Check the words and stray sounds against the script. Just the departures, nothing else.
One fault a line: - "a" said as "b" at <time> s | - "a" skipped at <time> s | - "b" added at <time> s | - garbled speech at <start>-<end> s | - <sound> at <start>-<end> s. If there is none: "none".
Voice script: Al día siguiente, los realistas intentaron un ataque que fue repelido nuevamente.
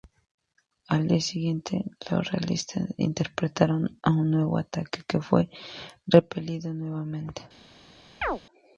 - "nuevo" added at 4.3 s
- chirp at 8.2-8.4 s